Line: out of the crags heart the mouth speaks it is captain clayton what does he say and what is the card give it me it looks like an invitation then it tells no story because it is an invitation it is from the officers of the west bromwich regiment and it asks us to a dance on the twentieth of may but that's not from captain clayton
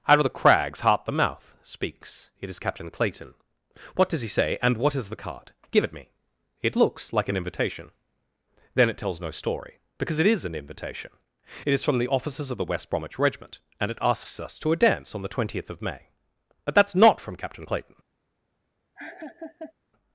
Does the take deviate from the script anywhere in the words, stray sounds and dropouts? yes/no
yes